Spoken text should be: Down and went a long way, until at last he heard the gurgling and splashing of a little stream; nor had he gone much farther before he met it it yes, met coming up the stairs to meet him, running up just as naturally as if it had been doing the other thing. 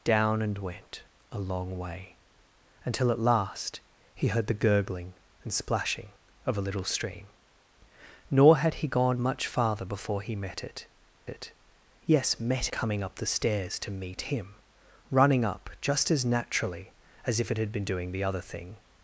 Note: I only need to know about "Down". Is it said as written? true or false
true